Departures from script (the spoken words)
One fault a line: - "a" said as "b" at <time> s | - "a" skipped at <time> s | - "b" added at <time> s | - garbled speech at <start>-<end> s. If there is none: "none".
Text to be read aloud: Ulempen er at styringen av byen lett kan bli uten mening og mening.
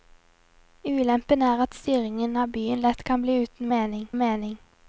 none